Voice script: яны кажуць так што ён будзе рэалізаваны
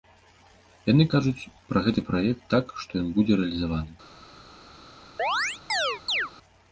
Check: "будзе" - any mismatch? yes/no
no